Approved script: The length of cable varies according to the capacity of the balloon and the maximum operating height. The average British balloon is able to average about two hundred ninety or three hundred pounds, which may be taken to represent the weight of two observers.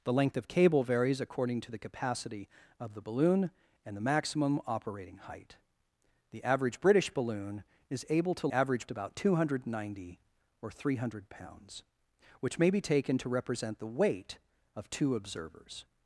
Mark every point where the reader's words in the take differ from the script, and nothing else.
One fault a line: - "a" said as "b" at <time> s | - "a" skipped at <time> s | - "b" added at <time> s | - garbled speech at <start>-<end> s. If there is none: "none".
none